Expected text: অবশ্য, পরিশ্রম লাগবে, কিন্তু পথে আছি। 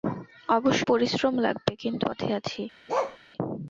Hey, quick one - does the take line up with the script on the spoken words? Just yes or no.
yes